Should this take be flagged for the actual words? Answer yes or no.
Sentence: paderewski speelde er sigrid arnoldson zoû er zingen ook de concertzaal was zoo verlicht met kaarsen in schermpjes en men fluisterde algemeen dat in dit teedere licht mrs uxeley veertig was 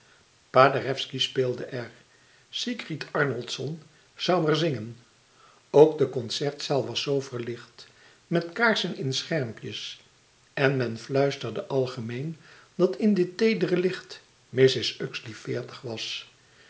no